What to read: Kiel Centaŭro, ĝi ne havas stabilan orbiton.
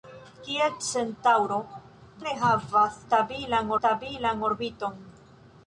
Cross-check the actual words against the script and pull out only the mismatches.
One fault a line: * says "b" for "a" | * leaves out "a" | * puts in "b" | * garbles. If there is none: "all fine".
* leaves out "ĝi"
* puts in "stabilan"